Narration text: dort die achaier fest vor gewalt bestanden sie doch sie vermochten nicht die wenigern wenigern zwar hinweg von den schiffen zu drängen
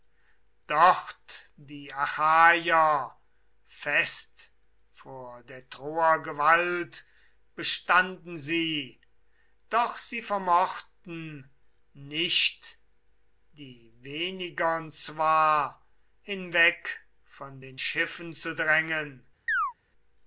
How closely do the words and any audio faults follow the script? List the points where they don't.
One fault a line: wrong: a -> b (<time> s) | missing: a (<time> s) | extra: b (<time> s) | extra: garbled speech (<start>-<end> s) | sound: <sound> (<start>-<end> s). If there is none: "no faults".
extra: der troer (5.4 s)
missing: wenigern (14.9 s)
sound: chirp (19.5-19.7 s)